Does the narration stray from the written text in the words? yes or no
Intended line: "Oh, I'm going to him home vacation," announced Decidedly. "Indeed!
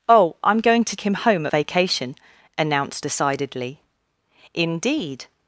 no